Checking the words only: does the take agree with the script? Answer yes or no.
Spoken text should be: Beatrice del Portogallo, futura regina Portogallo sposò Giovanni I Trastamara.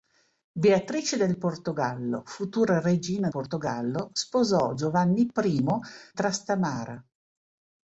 yes